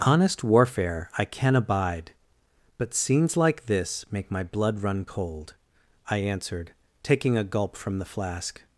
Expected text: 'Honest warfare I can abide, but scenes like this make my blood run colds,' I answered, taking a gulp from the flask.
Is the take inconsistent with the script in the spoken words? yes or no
yes